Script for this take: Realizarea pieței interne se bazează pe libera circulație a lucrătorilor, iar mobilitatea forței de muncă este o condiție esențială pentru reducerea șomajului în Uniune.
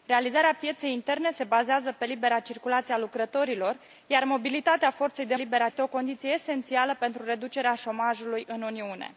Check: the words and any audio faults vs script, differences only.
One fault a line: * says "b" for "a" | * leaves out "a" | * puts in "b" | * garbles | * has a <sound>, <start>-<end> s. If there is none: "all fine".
* says "libera" for "muncă"